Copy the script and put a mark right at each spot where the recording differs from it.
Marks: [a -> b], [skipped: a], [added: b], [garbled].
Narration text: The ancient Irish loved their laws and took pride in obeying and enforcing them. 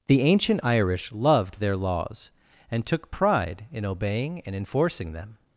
The ancient Irish loved their laws and took pride in obeying and enforcing them.